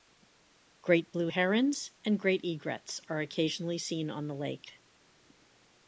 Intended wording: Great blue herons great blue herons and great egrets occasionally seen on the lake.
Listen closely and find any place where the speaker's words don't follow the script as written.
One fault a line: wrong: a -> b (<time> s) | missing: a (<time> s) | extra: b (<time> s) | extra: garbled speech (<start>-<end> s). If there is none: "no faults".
missing: great blue herons (1.9 s)
extra: are (3.1 s)